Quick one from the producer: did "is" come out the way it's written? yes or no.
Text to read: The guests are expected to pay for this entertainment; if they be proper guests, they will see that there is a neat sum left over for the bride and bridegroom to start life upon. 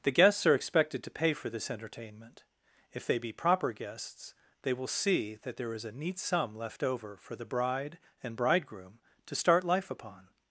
yes